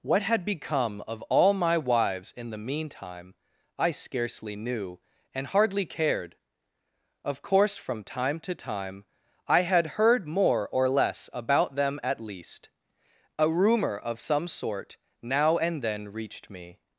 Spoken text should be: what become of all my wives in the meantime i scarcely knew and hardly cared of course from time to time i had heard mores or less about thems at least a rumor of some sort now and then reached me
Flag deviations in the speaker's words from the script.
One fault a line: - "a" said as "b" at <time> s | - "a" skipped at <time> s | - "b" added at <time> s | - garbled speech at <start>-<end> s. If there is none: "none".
- "had" added at 0.2 s
- "mores" said as "more" at 10.3 s
- "thems" said as "them" at 11.8 s